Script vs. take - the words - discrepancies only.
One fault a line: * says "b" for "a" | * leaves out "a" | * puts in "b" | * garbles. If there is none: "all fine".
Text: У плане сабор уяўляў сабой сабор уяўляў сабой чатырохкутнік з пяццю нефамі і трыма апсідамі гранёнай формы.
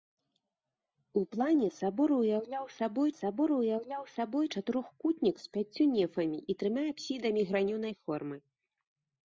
all fine